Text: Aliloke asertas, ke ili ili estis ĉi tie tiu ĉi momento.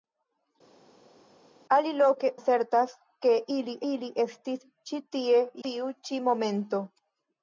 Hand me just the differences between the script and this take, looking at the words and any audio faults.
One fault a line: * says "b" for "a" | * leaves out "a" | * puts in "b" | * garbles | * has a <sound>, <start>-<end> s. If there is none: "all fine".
all fine